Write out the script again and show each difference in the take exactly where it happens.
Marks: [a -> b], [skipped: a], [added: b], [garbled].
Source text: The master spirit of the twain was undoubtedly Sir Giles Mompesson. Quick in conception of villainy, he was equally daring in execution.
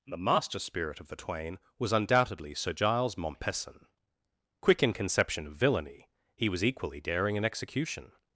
The master spirit of the twain was undoubtedly Sir Giles Mompesson. Quick in conception of villainy, he was equally daring in execution.